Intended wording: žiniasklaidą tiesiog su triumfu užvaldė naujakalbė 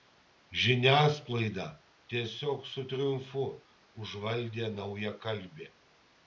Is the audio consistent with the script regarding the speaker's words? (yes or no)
yes